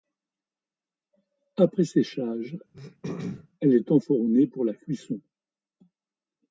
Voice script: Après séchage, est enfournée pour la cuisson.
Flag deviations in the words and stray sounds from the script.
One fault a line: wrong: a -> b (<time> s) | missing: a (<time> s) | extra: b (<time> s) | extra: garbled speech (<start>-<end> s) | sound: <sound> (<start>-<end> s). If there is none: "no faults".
sound: throat clearing (2.7-3.5 s)
extra: elle (3.6 s)